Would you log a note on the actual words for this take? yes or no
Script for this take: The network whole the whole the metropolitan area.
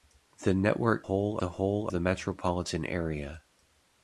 no